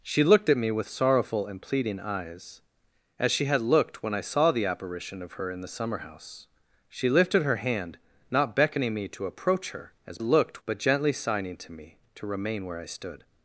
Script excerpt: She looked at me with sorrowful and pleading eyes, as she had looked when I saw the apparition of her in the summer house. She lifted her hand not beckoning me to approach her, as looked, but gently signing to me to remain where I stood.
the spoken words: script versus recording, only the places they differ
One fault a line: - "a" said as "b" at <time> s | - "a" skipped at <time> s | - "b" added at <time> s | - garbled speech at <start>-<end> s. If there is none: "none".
none